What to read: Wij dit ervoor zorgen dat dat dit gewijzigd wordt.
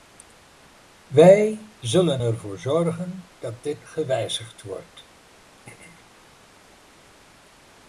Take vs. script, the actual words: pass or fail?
fail